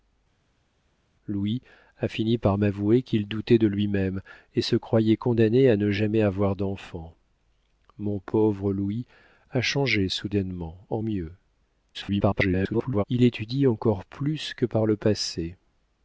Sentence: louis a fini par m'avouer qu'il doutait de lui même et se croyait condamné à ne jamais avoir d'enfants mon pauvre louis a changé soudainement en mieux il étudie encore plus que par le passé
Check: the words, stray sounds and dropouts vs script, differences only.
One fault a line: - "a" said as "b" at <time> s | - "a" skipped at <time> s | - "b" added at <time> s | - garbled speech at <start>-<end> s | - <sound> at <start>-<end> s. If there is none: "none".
- garbled speech at 11.9-13.0 s